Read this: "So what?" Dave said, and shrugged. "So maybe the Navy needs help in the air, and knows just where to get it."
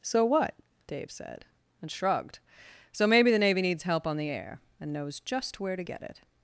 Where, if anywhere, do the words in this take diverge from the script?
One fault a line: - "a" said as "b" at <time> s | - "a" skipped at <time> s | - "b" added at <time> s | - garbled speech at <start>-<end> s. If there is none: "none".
- "in" said as "on" at 4.1 s